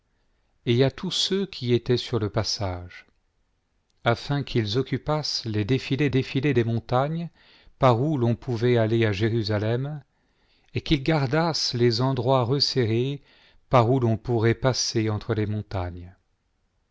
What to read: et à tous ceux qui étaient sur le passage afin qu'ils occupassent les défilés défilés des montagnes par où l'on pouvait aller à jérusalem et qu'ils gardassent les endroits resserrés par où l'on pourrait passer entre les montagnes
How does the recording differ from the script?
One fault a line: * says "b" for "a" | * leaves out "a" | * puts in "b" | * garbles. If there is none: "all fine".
all fine